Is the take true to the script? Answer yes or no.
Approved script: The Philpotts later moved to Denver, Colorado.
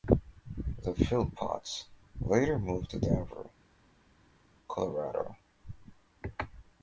yes